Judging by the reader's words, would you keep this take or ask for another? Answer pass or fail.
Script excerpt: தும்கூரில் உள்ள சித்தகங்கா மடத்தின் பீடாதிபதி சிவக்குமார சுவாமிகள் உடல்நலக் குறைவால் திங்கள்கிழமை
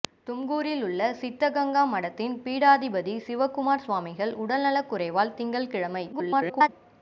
fail